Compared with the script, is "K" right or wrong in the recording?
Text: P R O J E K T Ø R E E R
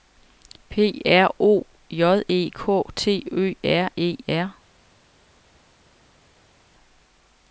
right